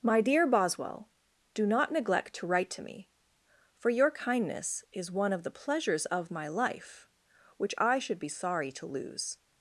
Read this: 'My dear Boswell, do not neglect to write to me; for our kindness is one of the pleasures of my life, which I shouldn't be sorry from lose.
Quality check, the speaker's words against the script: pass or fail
fail